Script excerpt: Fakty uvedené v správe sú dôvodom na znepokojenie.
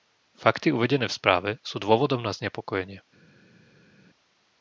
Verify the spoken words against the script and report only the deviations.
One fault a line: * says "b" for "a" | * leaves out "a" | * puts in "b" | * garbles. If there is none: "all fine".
all fine